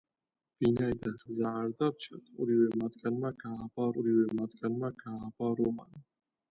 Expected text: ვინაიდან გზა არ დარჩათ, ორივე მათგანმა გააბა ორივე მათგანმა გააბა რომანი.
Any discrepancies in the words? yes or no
no